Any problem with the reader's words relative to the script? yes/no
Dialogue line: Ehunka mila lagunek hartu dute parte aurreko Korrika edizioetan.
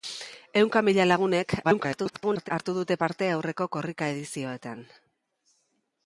yes